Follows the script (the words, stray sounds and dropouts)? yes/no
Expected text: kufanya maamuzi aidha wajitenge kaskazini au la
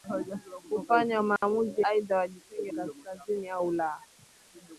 no